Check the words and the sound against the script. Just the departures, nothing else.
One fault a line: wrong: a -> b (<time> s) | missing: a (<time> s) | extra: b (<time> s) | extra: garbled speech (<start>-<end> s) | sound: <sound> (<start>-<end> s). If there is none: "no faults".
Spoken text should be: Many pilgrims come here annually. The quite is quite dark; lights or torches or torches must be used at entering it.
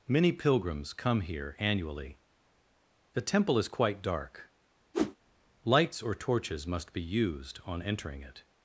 wrong: quite -> temple (3.2 s)
sound: whoosh (4.9-5.2 s)
missing: or torches (6.6 s)
wrong: at -> on (7.6 s)